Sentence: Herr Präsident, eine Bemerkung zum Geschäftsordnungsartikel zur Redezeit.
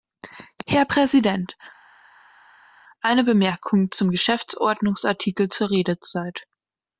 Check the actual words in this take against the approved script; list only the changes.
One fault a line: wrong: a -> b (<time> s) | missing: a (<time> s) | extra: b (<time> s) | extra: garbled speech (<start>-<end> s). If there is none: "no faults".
no faults